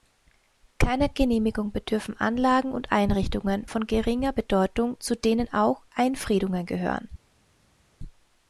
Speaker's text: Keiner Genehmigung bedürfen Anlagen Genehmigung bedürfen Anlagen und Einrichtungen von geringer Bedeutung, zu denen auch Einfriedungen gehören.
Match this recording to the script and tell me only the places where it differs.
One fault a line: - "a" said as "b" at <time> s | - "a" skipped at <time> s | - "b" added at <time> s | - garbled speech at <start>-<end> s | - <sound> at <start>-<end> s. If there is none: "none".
- "Genehmigung bedürfen Anlagen" skipped at 2.7 s